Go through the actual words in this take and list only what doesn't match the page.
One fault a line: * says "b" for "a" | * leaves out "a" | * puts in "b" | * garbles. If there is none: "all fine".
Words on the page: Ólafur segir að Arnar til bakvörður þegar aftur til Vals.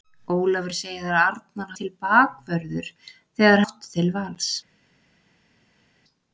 all fine